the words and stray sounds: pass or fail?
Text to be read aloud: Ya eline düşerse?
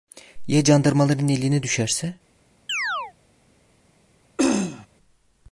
fail